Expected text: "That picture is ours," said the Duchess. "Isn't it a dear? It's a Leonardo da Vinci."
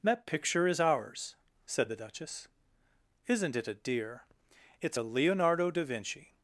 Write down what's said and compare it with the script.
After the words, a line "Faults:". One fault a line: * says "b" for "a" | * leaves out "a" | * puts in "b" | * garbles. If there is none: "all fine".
"That picture is ours," said the Duchess. "Isn't it a dear? It's a Leonardo da Vinci."
Faults:
all fine